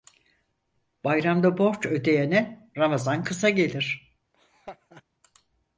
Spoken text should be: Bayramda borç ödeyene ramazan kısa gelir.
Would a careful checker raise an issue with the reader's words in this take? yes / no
no